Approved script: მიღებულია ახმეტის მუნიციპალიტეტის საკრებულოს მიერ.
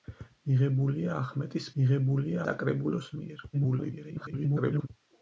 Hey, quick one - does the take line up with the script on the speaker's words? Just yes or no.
no